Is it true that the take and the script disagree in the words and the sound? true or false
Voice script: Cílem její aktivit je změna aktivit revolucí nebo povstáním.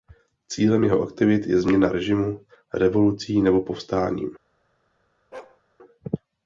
true